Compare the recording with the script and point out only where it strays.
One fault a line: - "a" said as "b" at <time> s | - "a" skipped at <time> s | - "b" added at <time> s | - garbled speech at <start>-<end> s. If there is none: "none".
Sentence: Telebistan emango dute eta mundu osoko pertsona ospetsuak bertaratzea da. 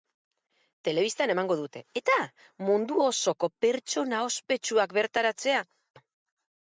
none